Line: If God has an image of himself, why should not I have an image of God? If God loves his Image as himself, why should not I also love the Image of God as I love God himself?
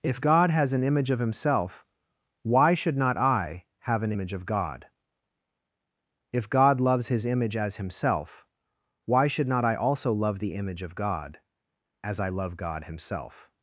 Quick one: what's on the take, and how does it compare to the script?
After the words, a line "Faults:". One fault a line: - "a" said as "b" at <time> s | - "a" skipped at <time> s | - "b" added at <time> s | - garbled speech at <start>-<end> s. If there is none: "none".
If God has an image of himself, why should not I have an image of God? If God loves his Image as himself, why should not I also love the Image of God as I love God himself?
Faults:
none